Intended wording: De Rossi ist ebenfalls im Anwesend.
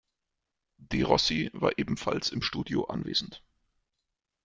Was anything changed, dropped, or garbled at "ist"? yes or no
yes